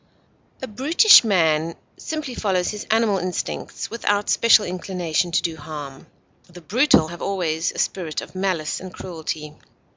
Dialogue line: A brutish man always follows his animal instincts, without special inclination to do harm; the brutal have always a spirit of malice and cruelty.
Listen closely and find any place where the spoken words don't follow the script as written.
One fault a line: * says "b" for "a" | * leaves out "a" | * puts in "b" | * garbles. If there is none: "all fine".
* says "simply" for "always"